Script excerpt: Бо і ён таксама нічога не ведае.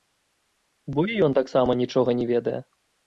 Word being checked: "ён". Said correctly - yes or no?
yes